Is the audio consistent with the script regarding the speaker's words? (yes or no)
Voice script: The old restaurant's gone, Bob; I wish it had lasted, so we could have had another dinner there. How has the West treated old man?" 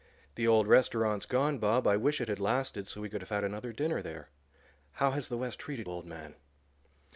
yes